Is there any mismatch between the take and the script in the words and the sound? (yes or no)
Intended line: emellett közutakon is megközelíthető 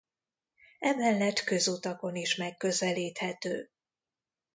no